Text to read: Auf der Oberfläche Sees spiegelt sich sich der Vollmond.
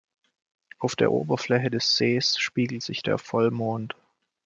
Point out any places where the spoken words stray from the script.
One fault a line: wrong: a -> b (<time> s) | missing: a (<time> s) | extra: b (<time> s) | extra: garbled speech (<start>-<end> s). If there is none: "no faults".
extra: des (1.7 s)
missing: sich (3.0 s)